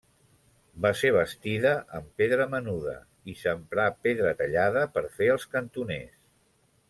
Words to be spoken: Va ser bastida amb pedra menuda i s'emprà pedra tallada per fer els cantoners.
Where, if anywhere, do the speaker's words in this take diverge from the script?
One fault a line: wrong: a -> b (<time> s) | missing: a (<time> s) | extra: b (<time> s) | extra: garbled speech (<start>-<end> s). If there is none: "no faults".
no faults